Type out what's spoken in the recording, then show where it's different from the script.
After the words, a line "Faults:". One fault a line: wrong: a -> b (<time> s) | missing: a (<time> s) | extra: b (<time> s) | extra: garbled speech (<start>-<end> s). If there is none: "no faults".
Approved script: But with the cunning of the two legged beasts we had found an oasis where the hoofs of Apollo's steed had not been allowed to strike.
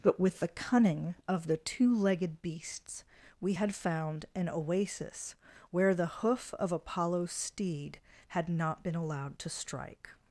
But with the cunning of the two legged beasts we had found an oasis where the hoof of Apollo's steed had not been allowed to strike.
Faults:
wrong: hoofs -> hoof (6.1 s)